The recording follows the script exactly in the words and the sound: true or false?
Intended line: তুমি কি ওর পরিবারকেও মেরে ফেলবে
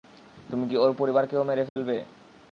false